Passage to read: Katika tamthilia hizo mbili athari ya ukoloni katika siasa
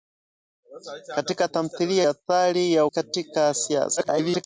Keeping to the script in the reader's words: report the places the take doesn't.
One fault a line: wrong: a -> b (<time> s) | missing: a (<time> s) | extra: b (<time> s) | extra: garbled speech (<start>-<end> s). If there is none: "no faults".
missing: hizo mbili (2.0 s)
missing: ukoloni (2.9 s)
extra: garbled speech (4.0-4.4 s)